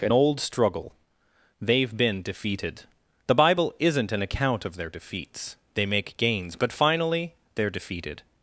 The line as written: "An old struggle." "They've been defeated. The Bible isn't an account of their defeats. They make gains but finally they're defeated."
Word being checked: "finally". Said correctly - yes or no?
yes